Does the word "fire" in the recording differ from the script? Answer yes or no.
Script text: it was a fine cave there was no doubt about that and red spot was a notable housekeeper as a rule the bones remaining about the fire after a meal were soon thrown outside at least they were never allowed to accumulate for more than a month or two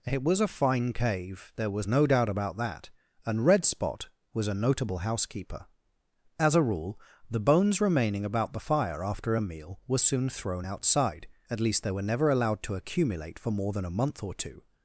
no